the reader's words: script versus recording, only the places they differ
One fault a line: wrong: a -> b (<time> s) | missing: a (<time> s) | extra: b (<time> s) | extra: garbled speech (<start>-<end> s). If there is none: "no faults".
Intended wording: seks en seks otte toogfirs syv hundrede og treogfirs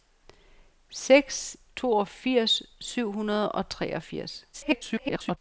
missing: en seks otte (1.6 s)
extra: garbled speech (4.5-5.4 s)